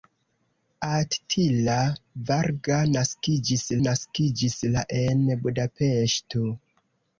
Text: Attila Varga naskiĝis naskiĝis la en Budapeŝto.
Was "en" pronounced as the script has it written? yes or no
yes